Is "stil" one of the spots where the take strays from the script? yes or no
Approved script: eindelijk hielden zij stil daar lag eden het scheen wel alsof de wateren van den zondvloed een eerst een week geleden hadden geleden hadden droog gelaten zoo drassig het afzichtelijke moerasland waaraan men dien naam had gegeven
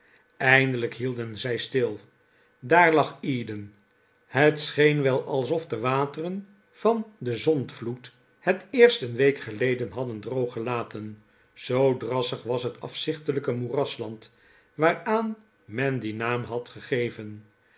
no